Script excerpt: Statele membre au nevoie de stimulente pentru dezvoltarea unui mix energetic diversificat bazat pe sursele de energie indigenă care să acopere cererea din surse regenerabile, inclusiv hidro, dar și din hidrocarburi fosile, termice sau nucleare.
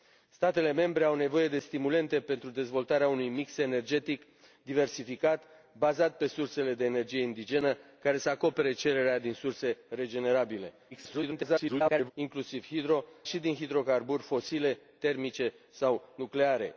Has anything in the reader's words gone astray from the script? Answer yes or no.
yes